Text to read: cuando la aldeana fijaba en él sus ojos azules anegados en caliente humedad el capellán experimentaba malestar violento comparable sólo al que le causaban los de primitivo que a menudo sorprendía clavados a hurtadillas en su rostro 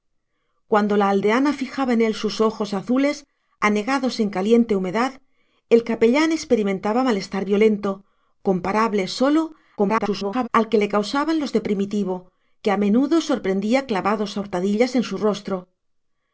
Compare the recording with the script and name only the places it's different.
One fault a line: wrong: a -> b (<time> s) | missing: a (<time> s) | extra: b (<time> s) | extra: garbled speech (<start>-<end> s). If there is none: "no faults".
extra: garbled speech (9.8-10.5 s)